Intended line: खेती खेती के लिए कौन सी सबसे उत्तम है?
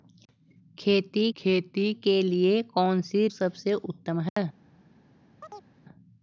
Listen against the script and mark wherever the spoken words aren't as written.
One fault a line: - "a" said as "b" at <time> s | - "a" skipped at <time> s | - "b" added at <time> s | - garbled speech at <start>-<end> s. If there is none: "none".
none